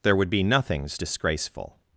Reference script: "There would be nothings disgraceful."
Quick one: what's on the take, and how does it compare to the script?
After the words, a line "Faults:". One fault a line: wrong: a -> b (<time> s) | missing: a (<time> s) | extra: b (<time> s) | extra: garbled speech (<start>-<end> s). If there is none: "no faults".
"There would be nothings disgraceful."
Faults:
no faults